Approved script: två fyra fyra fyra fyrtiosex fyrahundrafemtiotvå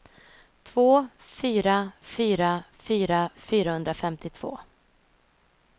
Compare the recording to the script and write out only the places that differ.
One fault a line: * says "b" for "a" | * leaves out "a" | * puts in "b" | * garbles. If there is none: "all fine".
* leaves out "fyrtiosex"